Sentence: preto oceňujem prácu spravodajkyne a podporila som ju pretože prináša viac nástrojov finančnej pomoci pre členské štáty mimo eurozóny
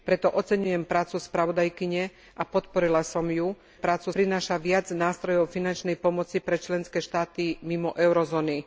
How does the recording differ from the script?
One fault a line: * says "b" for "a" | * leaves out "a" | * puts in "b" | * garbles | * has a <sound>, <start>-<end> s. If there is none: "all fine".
* says "prácu" for "pretože"